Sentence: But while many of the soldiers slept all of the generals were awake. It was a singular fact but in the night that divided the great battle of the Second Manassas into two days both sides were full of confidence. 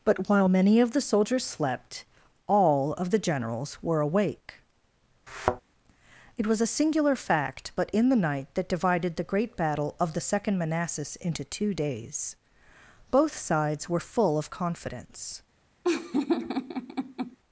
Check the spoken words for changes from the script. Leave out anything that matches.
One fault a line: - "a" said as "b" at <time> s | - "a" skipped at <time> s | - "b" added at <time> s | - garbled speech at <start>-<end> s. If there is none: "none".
none